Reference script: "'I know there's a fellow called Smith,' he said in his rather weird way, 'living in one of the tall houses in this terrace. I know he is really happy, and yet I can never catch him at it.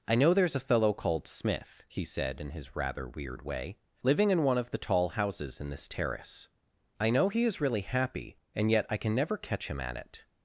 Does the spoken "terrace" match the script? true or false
true